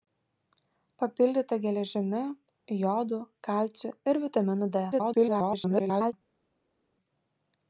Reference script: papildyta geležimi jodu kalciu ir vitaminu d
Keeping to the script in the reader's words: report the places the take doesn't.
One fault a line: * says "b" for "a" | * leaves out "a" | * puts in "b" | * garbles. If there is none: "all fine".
* garbles